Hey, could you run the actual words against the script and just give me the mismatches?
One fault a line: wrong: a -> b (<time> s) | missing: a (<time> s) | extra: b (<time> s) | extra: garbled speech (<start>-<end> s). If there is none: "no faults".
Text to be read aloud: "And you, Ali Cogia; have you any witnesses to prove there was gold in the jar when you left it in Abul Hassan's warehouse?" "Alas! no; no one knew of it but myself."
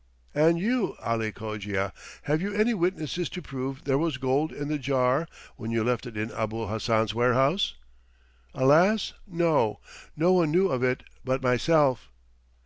no faults